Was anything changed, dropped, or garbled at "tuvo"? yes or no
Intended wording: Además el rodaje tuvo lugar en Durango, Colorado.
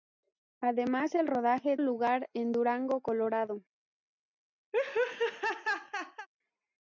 yes